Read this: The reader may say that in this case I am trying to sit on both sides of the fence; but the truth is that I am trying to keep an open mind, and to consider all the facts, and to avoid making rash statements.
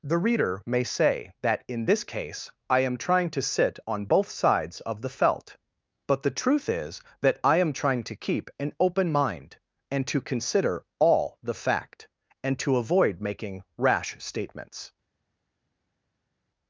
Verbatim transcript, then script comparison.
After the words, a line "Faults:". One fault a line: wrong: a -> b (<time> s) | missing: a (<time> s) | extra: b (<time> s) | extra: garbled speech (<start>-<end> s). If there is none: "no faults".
The reader may say that in this case I am trying to sit on both sides of the felt; but the truth is that I am trying to keep an open mind, and to consider all the fact, and to avoid making rash statements.
Faults:
wrong: fence -> felt (5.1 s)
wrong: facts -> fact (11.6 s)